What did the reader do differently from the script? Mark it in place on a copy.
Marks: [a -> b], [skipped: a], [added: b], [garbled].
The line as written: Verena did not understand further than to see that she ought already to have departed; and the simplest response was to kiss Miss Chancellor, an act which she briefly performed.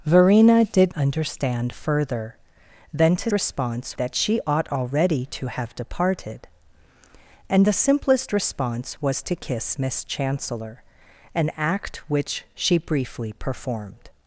Verena did [skipped: not] understand further than to [see -> response] that she ought already to have departed; and the simplest response was to kiss Miss Chancellor, an act which she briefly performed.